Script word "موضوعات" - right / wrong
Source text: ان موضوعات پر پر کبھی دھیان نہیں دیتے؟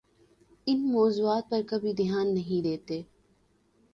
right